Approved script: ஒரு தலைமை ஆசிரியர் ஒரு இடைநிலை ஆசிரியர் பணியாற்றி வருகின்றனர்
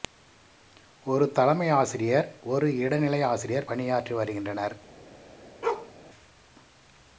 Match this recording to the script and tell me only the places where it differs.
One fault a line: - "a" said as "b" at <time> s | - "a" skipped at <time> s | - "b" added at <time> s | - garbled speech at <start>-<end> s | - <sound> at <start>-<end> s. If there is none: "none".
- bark at 5.6-5.9 s